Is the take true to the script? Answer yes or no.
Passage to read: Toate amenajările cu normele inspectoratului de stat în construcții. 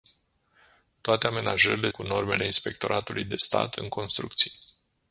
yes